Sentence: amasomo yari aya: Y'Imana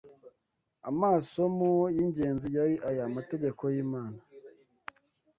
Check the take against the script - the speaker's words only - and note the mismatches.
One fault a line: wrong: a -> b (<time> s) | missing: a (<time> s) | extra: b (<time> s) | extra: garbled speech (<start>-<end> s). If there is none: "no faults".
extra: y'ingenzi (1.9 s)
extra: Amategeko (3.1 s)